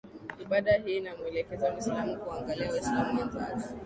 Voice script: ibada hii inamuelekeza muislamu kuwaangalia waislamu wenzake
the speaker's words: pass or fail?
pass